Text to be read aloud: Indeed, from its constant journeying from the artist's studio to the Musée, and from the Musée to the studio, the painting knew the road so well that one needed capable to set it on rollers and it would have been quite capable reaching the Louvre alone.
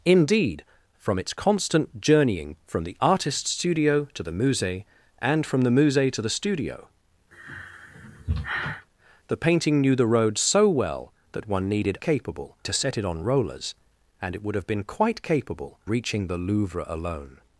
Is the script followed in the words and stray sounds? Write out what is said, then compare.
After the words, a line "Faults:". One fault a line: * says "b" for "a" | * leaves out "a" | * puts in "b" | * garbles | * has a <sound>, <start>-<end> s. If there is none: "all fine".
Indeed, from its constant journeying from the artist's studio to the Musée, and from the Musée to the studio, the painting knew the road so well that one needed capable to set it on rollers and it would have been quite capable reaching the Louvre alone.
Faults:
* has a sigh, 7.3-8.9 s